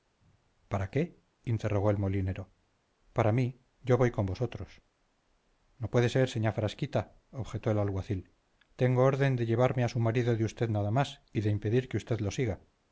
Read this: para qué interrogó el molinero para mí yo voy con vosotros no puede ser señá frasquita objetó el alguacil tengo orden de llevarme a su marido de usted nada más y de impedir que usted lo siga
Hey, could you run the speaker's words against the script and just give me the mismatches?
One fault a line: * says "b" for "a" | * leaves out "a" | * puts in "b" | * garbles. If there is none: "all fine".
all fine